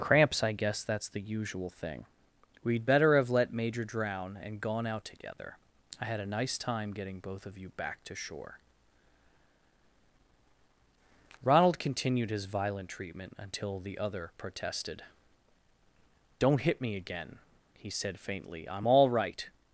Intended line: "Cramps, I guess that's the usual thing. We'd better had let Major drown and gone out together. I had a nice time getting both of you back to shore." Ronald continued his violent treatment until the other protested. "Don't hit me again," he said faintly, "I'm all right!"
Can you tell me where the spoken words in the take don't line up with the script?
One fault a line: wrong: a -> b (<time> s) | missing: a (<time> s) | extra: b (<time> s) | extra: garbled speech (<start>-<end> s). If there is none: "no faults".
wrong: had -> have (3.2 s)